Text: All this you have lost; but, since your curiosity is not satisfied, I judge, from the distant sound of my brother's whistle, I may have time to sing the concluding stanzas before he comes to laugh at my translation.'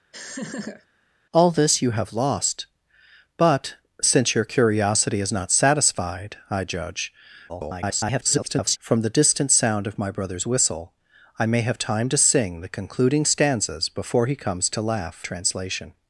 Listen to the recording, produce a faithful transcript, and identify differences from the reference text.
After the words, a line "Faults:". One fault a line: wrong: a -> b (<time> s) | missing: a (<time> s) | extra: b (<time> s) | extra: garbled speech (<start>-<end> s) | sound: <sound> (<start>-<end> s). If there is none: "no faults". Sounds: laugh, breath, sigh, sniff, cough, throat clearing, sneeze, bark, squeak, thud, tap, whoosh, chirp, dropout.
All this you have lost; but, since your curiosity is not satisfied, I judge, [garbled] from the distant sound of my brother's whistle, I may have time to sing the concluding stanzas before he comes to laugh translation.'
Faults:
sound: laugh (0.1-0.9 s)
extra: garbled speech (7.5-8.8 s)
missing: at my (15.2 s)